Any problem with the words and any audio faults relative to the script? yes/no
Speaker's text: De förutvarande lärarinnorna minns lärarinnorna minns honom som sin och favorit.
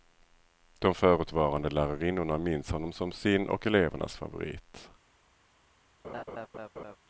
yes